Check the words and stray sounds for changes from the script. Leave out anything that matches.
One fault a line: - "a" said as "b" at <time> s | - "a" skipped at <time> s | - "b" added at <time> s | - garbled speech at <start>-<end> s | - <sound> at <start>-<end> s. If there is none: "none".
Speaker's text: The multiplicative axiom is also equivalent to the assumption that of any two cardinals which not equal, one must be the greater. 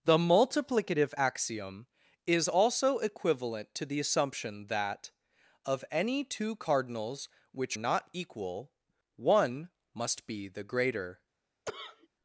- cough at 11.7-12.1 s